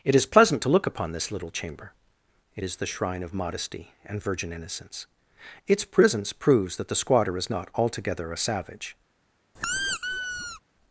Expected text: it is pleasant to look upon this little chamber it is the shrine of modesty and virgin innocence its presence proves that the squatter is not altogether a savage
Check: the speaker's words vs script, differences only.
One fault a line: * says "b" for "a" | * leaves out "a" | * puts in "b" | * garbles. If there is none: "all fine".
all fine